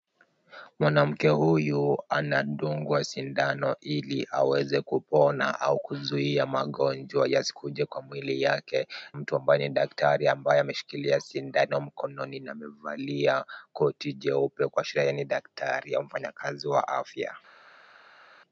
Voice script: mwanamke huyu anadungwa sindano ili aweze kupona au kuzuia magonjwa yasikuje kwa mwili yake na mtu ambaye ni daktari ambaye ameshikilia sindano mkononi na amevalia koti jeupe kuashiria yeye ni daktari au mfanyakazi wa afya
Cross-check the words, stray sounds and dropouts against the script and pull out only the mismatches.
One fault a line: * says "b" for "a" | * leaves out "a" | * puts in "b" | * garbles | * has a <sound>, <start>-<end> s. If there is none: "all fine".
* leaves out "na"